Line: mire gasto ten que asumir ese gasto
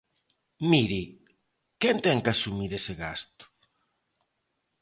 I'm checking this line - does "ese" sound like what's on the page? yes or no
yes